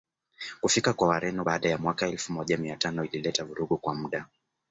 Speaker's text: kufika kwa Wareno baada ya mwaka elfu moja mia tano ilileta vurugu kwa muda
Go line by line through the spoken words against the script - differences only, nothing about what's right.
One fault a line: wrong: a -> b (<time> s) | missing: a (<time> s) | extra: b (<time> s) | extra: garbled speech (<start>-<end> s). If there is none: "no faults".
no faults